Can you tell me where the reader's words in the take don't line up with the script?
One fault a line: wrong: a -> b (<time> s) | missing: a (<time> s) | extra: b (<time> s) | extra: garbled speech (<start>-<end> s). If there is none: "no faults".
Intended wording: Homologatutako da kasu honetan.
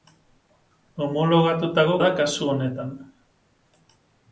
no faults